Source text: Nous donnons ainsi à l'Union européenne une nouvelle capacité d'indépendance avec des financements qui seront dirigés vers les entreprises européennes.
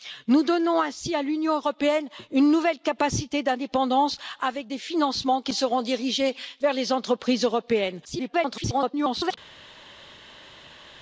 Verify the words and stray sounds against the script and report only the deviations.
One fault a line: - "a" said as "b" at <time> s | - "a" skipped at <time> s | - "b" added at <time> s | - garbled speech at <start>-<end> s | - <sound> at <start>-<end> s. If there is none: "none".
- garbled speech at 8.0-9.4 s